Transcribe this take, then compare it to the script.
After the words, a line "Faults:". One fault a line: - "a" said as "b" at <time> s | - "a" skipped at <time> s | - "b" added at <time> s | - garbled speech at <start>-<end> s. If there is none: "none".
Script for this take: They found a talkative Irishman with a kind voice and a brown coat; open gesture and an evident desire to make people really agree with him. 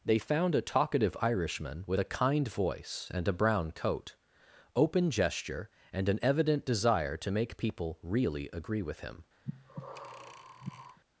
They found a talkative Irishman with a kind voice and a brown coat; open gesture and an evident desire to make people really agree with him.
Faults:
none